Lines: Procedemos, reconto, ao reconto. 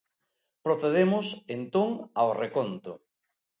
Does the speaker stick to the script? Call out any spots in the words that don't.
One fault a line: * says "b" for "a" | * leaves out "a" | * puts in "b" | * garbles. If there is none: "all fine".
* says "entón" for "reconto"